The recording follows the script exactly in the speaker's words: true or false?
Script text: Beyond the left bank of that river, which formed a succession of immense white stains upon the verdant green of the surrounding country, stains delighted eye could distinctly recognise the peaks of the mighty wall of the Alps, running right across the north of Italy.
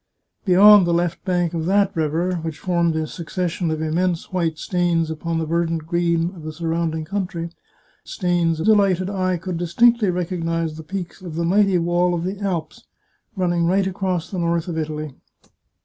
true